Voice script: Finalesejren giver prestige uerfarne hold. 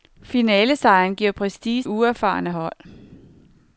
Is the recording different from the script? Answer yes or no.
no